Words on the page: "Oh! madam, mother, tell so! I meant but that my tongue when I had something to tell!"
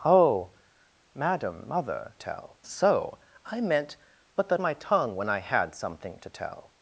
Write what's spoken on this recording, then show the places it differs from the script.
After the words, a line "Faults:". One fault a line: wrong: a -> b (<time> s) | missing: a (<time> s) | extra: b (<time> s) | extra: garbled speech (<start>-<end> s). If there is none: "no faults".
"Oh! madam, mother, tell so! I meant but that my tongue when I had something to tell!"
Faults:
no faults